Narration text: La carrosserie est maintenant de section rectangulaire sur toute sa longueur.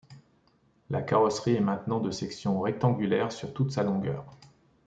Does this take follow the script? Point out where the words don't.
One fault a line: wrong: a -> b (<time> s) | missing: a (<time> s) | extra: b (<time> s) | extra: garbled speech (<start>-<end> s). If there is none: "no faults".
no faults